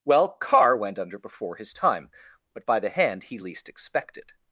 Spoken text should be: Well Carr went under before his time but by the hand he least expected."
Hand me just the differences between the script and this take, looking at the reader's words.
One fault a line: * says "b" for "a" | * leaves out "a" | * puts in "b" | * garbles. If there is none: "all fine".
all fine